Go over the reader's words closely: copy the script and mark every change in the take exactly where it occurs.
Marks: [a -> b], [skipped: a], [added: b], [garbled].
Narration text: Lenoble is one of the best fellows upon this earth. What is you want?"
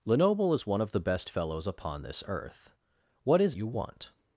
Lenoble is one of the best fellows upon this earth. What is you want?"